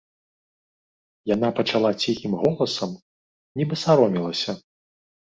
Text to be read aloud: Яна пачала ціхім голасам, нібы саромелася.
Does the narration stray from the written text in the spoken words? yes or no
no